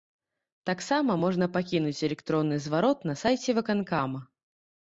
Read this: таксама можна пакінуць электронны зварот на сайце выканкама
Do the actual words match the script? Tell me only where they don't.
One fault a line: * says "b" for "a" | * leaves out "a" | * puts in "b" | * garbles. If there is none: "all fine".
all fine